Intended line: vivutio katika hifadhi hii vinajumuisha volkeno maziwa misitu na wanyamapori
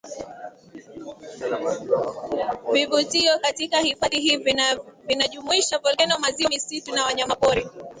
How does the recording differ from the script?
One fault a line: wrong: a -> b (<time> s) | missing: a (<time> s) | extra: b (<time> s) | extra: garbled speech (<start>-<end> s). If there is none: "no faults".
no faults